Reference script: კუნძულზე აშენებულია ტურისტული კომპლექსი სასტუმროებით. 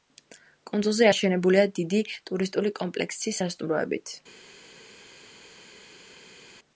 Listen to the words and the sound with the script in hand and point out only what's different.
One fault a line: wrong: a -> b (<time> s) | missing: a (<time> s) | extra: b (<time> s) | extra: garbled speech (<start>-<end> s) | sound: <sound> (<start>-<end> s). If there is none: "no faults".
extra: დიდი (1.8 s)